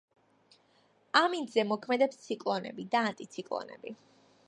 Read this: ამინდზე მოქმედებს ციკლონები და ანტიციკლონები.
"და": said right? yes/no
yes